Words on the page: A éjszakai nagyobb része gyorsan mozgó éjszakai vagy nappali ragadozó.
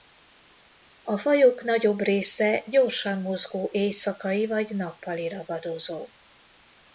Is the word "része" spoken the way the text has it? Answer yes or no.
yes